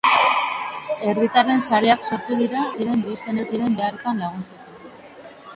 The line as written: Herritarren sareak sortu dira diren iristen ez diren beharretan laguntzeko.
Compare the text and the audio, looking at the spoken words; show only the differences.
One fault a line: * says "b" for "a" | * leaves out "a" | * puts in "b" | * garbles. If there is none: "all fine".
all fine